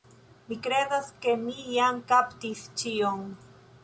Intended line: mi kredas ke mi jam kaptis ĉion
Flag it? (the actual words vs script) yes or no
no